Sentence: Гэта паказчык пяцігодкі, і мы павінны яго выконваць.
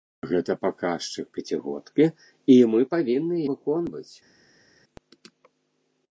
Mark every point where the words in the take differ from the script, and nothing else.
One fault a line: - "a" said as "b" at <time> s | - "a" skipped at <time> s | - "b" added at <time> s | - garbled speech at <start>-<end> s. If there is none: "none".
- "яго" skipped at 3.4 s